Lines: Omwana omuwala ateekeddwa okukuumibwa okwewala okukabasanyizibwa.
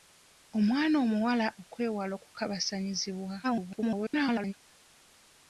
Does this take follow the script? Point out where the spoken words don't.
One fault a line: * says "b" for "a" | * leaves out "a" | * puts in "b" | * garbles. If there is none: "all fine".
* leaves out "ateekeddwa okukuumibwa"
* garbles